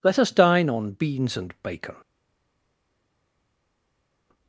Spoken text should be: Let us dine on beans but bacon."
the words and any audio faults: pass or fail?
fail